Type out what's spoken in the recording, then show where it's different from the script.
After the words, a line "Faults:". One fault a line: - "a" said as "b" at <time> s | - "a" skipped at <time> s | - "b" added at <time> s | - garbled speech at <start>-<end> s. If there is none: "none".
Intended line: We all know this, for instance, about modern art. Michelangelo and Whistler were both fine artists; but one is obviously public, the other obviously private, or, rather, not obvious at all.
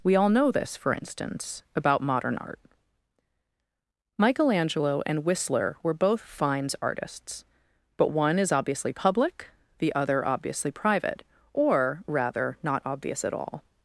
We all know this, for instance, about modern art. Michelangelo and Whistler were both fines artists; but one is obviously public, the other obviously private, or, rather, not obvious at all.
Faults:
- "fine" said as "fines" at 6.2 s